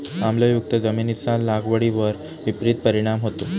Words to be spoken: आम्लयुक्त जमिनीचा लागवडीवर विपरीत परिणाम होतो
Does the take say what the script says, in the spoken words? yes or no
yes